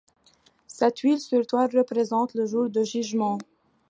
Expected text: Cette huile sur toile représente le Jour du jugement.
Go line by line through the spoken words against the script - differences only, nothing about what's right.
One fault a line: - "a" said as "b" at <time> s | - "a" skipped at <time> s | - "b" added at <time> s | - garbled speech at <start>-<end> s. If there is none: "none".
none